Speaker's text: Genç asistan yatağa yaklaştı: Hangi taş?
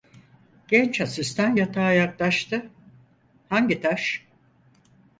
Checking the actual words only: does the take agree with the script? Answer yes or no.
yes